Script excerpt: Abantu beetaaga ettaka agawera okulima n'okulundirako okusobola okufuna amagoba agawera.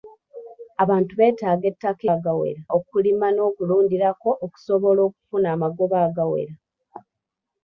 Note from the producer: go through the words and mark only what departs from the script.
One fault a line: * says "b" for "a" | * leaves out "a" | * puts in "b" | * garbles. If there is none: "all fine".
all fine